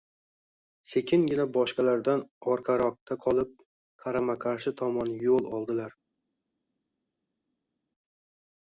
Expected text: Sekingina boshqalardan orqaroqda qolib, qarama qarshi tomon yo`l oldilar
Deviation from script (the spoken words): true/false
false